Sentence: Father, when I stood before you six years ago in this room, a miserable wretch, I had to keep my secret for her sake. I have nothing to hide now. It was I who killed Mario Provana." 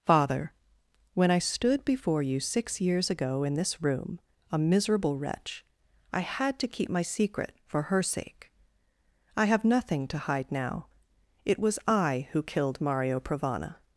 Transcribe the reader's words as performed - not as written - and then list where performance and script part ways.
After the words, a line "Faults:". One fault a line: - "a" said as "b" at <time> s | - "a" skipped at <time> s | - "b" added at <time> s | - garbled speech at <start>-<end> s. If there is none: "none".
Father, when I stood before you six years ago in this room, a miserable wretch, I had to keep my secret for her sake. I have nothing to hide now. It was I who killed Mario Provana."
Faults:
none